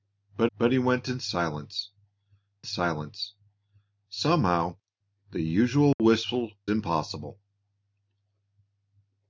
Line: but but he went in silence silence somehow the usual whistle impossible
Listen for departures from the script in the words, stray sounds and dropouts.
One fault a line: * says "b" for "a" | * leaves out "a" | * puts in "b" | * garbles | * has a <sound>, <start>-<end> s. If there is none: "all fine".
* has a dropout, 5.9-6.0 s